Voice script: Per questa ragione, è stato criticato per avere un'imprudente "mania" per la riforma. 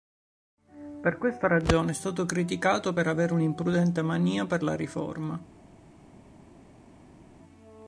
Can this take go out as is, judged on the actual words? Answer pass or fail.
pass